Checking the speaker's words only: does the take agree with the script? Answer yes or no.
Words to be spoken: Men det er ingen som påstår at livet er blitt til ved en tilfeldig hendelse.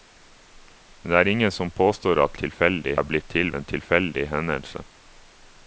no